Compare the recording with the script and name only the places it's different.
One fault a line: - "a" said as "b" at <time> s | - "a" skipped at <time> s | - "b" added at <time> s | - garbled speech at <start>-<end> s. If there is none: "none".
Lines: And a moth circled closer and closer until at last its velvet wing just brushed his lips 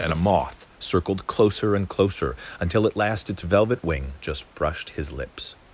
none